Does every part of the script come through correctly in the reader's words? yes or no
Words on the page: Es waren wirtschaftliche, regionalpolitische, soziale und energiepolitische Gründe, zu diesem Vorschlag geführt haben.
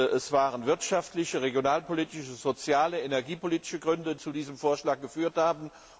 yes